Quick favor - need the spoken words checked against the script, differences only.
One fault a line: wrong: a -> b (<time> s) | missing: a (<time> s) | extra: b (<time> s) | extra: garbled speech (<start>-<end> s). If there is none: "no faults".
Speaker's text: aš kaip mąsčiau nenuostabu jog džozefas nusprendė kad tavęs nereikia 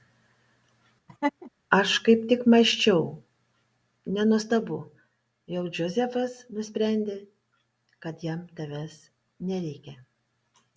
extra: tik (2.3 s)
extra: jam (8.3 s)